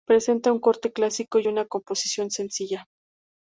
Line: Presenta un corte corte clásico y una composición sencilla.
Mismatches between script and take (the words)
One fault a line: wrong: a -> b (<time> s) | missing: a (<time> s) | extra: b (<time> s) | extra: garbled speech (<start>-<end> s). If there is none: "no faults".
missing: corte (0.9 s)